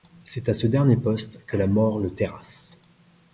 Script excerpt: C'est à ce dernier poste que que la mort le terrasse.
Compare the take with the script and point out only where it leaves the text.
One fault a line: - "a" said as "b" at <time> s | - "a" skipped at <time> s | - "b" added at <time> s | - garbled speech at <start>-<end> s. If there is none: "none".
- "que" skipped at 1.6 s